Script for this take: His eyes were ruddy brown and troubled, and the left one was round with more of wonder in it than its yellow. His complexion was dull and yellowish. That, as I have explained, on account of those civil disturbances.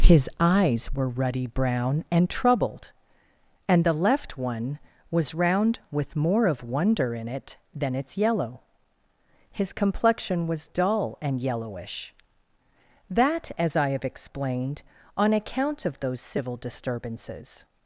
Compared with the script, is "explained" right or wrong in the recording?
right